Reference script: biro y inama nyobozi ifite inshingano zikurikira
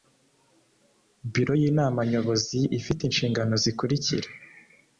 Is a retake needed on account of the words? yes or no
no